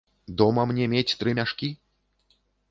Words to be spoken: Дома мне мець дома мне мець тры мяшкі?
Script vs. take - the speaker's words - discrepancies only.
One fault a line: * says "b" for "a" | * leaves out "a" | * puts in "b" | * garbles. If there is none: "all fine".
* leaves out "дома мне мець"